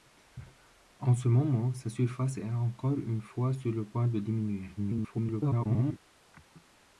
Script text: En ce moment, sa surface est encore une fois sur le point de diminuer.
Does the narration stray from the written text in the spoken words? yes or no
yes